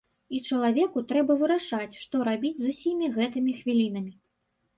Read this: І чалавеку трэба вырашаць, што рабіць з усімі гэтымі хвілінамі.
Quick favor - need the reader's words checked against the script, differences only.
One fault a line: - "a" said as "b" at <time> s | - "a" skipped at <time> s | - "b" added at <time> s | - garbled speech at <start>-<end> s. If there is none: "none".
none